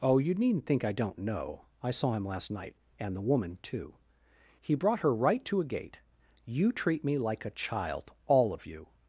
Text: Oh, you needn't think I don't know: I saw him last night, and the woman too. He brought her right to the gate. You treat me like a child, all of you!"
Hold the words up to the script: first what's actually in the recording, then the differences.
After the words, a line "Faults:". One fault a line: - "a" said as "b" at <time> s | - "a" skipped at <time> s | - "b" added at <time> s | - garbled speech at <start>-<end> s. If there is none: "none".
Oh, you needn't think I don't know: I saw him last night, and the woman too. He brought her right to a gate. You treat me like a child, all of you!"
Faults:
- "the" said as "a" at 5.6 s